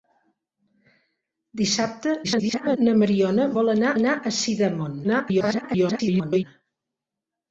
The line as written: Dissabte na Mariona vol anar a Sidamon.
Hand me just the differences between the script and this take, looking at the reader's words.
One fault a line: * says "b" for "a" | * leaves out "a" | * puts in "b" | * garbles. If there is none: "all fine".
* garbles
* puts in "anar"
* garbles